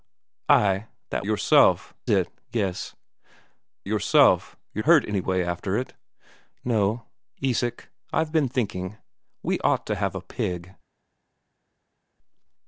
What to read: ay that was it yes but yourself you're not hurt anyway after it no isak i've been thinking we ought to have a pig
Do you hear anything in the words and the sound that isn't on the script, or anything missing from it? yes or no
yes